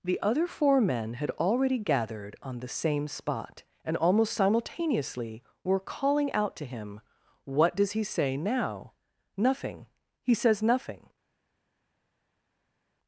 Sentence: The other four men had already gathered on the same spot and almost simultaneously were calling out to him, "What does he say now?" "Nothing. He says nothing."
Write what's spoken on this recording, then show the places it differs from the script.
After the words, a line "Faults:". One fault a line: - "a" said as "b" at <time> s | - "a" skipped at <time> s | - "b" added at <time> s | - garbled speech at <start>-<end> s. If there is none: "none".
The other four men had already gathered on the same spot and almost simultaneously were calling out to him, "What does he say now?" "Nothing. He says nothing."
Faults:
none